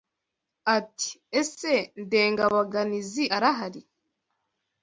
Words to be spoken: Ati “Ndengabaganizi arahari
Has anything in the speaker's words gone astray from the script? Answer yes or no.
yes